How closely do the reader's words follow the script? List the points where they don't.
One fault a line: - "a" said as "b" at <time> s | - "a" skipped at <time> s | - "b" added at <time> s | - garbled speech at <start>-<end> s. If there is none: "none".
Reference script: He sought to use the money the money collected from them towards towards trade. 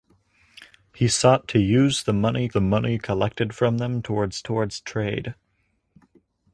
none